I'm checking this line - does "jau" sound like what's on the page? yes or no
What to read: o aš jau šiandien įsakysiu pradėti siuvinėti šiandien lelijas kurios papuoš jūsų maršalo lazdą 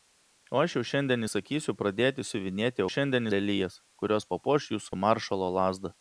yes